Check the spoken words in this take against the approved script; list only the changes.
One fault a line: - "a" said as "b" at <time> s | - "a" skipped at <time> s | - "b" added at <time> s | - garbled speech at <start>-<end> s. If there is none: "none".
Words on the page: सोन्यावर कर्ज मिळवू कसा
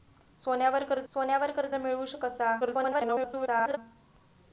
- "सोन्यावर कर्ज" added at 1.1 s
- garbled speech at 2.6-3.8 s